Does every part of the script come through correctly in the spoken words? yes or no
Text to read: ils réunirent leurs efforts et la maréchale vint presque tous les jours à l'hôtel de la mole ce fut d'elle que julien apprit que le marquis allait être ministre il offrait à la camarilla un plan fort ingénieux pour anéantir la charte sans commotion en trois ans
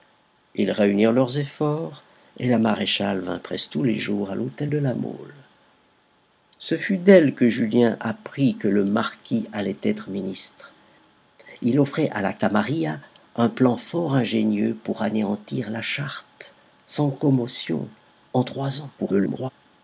no